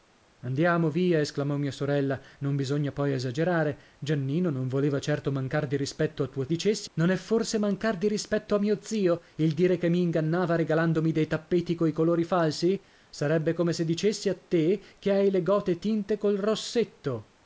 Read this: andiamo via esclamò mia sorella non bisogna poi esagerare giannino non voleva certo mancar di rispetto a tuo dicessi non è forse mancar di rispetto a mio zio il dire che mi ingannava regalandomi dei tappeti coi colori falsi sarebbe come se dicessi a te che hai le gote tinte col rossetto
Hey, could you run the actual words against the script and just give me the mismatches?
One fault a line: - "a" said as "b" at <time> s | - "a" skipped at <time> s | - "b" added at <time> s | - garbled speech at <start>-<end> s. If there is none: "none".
none